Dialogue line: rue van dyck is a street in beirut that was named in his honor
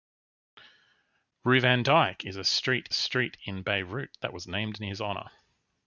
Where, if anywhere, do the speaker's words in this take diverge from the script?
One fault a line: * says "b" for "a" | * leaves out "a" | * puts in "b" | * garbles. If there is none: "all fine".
* puts in "street"